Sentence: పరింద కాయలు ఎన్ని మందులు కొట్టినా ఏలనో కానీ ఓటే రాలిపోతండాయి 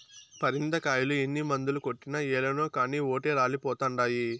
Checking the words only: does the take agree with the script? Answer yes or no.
yes